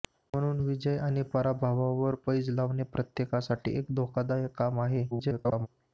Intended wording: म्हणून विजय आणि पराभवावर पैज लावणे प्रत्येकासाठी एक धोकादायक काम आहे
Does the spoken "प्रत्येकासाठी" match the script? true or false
true